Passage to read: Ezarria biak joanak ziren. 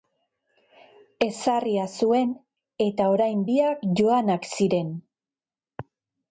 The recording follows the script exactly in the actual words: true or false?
false